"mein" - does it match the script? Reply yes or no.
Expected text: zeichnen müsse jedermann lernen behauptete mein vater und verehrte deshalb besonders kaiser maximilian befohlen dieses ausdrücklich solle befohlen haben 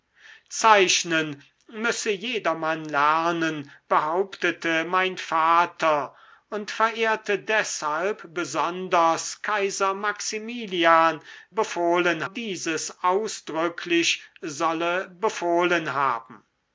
yes